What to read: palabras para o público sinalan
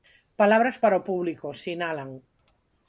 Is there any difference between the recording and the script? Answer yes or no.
no